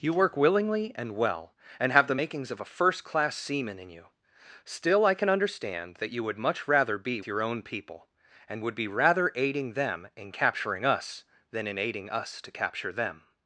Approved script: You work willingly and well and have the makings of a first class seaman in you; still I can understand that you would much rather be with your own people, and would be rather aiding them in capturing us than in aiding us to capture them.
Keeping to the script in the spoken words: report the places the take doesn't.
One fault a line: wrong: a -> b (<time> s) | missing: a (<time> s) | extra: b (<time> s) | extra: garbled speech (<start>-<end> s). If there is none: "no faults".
missing: with (7.2 s)